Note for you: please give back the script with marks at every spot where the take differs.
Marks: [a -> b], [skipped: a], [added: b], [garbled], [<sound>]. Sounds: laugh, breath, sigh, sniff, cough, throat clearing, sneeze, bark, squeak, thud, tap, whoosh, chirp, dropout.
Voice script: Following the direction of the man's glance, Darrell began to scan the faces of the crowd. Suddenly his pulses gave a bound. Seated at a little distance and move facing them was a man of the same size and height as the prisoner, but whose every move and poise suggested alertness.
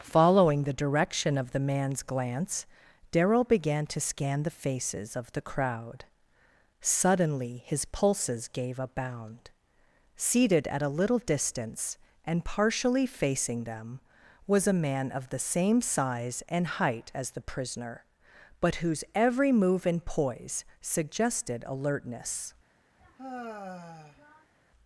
Following the direction of the man's glance, Darrell began to scan the faces of the crowd. Suddenly his pulses gave a bound. Seated at a little distance and [move -> partially] facing them was a man of the same size and height as the prisoner, but whose every move and poise suggested alertness. [sigh]